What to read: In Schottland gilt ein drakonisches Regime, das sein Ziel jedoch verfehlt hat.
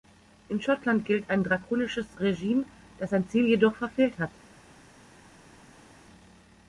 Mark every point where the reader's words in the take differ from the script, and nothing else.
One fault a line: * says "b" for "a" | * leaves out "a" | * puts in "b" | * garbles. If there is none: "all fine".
all fine